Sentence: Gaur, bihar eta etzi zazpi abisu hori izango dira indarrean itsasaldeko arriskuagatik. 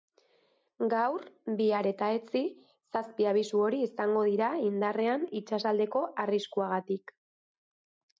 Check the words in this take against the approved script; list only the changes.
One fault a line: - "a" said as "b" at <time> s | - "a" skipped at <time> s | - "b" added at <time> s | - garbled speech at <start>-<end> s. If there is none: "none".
none